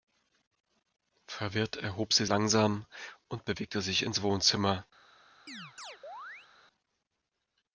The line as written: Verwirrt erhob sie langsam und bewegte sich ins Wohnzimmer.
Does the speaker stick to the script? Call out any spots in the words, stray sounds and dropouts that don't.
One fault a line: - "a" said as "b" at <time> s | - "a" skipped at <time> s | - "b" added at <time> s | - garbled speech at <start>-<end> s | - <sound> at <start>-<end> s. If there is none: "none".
- chirp at 5.5-6.5 s